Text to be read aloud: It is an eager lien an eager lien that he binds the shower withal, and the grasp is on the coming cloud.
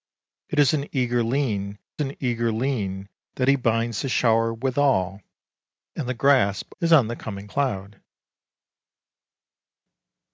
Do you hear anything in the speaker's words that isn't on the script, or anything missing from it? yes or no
no